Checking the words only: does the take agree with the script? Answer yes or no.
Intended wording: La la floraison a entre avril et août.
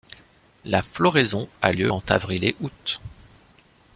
no